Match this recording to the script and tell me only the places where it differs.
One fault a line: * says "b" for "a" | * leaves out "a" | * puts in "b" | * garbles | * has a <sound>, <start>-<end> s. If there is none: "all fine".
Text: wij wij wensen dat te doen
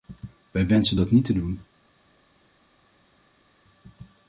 * leaves out "wij"
* puts in "niet"